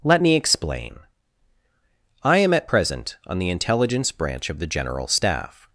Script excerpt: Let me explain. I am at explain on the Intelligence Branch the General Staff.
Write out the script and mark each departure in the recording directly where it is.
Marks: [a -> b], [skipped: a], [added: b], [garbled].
Let me explain. I am at [explain -> present] on the Intelligence Branch [added: of] the General Staff.